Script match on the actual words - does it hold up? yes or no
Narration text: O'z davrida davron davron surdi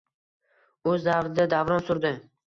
no